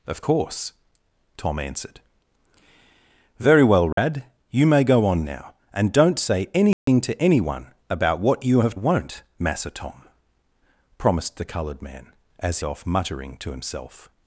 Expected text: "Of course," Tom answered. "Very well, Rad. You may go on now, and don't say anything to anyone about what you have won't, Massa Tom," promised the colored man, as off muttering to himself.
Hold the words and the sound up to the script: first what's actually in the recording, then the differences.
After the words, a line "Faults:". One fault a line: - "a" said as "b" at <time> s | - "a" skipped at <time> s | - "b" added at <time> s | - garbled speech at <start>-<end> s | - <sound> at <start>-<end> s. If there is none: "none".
"Of course," Tom answered. "Very well, Rad. You may go on now, and don't say anything to anyone about what you have won't, Massa Tom," promised the colored man, as off muttering to himself.
Faults:
- dropout at 3.9-4.0 s
- dropout at 6.7-6.9 s